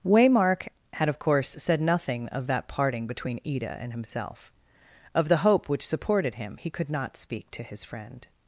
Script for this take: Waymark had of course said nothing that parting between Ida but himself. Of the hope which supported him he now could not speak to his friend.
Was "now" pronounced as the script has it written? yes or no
no